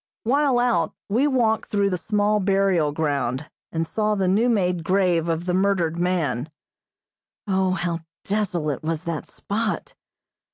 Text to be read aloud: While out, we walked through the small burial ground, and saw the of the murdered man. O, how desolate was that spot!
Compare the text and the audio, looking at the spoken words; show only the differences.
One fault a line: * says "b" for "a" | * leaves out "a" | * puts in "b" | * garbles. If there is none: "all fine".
* puts in "new made grave"